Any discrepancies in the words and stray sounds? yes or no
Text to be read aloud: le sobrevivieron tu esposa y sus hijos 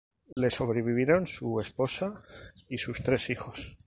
yes